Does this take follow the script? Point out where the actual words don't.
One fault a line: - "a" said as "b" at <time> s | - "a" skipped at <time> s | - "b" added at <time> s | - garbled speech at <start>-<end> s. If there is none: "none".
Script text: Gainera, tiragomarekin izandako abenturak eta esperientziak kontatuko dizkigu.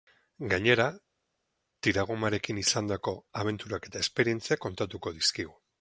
none